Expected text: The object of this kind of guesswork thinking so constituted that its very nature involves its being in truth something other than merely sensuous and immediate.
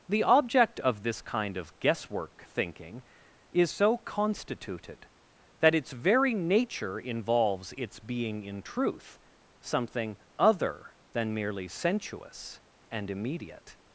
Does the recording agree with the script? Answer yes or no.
no